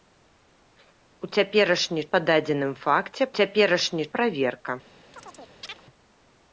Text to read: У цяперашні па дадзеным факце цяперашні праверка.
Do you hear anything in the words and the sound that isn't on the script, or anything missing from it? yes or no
yes